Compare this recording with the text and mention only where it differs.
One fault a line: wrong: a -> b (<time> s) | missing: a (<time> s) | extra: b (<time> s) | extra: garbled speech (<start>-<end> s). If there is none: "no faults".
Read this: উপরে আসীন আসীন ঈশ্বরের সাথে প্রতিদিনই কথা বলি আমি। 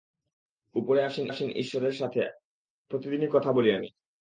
no faults